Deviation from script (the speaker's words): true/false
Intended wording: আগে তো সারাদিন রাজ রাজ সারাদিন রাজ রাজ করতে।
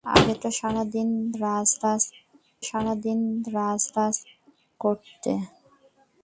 false